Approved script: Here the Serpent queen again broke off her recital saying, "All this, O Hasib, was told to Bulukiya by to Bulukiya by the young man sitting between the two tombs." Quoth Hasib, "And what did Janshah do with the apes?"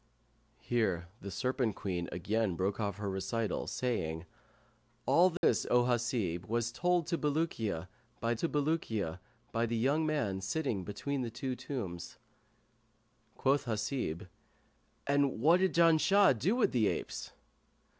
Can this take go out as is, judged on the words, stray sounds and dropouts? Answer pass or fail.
fail